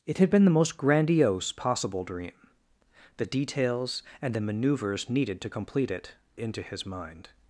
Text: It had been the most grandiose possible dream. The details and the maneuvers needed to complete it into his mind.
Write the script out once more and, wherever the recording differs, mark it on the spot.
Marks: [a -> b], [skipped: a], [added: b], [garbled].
It had been the most grandiose possible dream. The details and the maneuvers needed to complete it into his mind.